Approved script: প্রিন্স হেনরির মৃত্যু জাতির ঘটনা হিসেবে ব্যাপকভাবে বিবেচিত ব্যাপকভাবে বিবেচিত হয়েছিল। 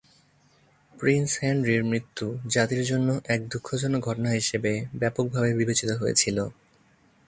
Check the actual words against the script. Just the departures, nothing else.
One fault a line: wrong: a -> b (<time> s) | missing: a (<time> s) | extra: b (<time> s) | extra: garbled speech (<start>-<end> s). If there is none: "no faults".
extra: জন্য এক দুঃখজনক (2.8 s)
missing: ব্যাপকভাবে বিবেচিত (5.9 s)